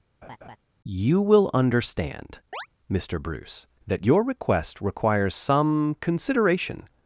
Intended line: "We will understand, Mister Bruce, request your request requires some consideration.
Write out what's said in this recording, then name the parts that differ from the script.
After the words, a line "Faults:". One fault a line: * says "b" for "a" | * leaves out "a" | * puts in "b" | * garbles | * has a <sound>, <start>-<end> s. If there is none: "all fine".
"You will understand, Mister Bruce, that your request requires some consideration.
Faults:
* has a laugh, 0.2-0.6 s
* says "You" for "We"
* has a chirp, 2.5-2.7 s
* says "that" for "request"